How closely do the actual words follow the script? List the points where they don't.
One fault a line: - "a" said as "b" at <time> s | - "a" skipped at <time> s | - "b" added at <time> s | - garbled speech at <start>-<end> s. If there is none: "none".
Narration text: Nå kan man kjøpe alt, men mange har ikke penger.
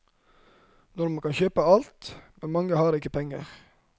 none